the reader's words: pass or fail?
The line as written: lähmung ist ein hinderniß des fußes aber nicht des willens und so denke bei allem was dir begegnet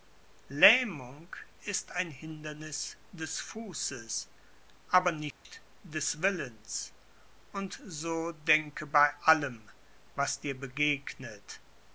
pass